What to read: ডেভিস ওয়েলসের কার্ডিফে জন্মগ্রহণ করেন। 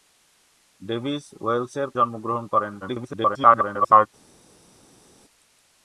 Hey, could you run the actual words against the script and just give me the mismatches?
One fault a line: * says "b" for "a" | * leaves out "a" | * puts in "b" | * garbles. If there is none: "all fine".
* leaves out "কার্ডিফে"
* garbles